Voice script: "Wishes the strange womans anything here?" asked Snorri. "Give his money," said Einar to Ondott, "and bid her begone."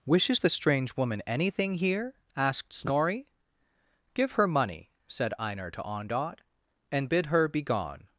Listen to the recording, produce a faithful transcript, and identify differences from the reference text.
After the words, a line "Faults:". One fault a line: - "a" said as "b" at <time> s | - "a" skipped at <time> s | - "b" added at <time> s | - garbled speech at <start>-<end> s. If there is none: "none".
"Wishes the strange woman anything here?" asked Snorri. "Give her money," said Einar to Ondott, "and bid her begone."
Faults:
- "womans" said as "woman" at 1.0 s
- "his" said as "her" at 4.3 s